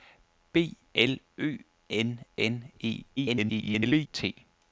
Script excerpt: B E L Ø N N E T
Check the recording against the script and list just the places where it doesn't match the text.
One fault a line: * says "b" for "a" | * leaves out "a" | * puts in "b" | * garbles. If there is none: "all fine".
* leaves out "E"
* garbles